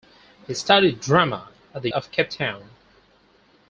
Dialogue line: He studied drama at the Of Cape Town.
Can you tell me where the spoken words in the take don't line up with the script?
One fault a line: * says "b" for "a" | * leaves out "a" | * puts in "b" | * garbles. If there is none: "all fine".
all fine